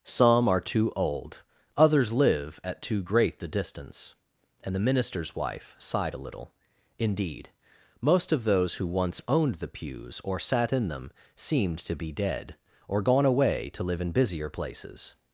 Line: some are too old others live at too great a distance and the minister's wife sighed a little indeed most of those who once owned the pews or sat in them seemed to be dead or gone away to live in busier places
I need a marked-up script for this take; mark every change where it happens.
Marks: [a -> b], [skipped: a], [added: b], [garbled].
some are too old others live at too great [a -> the] distance and the minister's wife sighed a little indeed most of those who once owned the pews or sat in them seemed to be dead or gone away to live in busier places